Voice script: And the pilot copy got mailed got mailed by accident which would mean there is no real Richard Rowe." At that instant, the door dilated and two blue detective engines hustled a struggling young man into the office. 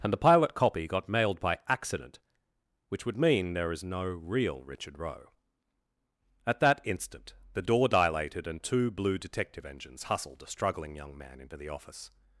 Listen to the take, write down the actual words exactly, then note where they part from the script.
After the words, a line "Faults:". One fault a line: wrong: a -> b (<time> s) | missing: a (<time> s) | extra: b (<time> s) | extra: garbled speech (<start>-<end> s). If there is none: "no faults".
And the pilot copy got mailed by accident which would mean there is no real Richard Rowe." At that instant, the door dilated and two blue detective engines hustled a struggling young man into the office.
Faults:
missing: got mailed (1.4 s)